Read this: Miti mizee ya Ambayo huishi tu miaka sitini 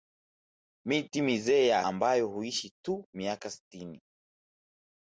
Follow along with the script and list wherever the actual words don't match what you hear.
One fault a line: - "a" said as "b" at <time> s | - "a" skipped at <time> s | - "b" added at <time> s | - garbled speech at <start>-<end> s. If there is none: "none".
none